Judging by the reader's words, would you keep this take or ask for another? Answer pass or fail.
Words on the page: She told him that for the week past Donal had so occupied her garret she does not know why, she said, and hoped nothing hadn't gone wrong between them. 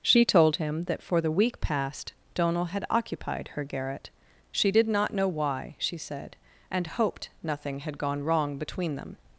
fail